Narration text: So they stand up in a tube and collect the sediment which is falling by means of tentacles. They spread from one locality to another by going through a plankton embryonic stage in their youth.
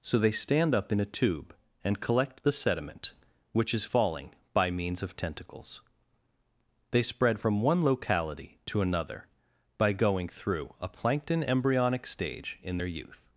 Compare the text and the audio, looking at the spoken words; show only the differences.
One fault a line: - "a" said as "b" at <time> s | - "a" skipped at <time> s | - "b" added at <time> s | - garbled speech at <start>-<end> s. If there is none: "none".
none